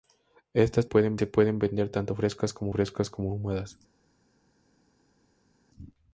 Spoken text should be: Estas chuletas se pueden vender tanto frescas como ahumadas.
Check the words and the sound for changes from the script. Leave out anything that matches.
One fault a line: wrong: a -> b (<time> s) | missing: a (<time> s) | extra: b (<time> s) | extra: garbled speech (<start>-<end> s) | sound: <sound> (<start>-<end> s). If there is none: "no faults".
wrong: chuletas -> pueden (0.8 s)
extra: frescas como (2.7 s)